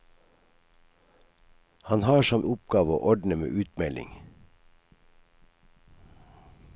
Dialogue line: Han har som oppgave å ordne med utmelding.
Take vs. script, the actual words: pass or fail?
pass